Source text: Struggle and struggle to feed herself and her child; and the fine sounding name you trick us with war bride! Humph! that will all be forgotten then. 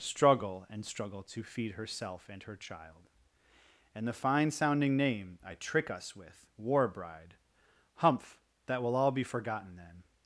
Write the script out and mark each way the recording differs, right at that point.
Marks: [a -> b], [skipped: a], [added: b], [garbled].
Struggle and struggle to feed herself and her child; and the fine sounding name [you -> I] trick us with war bride! Humph! that will all be forgotten then.